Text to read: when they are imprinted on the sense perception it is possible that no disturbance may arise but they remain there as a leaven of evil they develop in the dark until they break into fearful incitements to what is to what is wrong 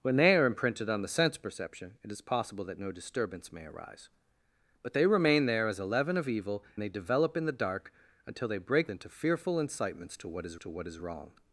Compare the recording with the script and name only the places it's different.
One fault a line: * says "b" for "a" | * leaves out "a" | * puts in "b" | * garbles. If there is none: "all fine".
all fine